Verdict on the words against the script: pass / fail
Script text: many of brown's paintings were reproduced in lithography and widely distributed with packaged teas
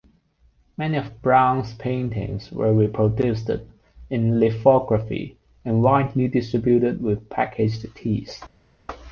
pass